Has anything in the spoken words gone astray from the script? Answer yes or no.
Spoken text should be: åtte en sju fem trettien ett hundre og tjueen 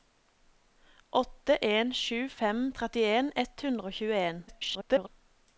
yes